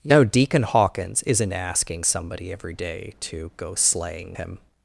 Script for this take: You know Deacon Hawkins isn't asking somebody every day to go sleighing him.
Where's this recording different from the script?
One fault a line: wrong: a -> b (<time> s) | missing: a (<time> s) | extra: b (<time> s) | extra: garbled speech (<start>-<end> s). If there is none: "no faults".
no faults